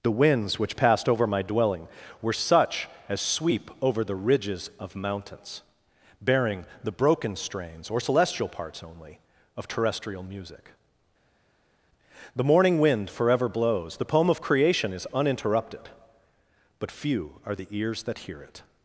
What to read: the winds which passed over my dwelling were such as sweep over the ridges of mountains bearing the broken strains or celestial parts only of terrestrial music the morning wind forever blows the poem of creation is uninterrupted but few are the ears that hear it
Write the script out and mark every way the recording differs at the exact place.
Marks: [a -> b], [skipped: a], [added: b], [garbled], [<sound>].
the winds which passed over my dwelling were such as sweep over the ridges of mountains bearing the broken strains or celestial parts only of terrestrial music the morning wind forever blows the poem of creation is uninterrupted but few are the ears that hear it